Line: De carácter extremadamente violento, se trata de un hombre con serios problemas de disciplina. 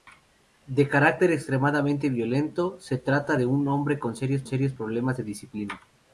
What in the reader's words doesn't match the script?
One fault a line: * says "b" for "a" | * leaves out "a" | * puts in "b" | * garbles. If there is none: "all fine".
* puts in "serios"